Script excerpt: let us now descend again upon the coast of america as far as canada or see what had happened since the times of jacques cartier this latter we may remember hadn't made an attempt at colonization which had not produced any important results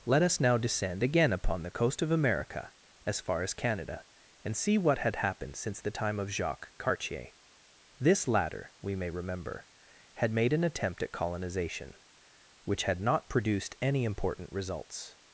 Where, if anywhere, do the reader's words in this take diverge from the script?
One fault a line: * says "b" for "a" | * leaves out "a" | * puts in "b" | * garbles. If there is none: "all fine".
* says "and" for "or"
* says "time" for "times"
* says "had" for "hadn't"